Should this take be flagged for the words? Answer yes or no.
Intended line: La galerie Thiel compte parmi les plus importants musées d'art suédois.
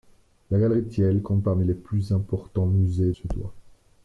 yes